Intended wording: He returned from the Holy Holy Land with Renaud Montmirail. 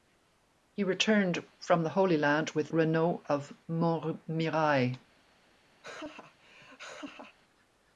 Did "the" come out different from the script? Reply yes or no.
no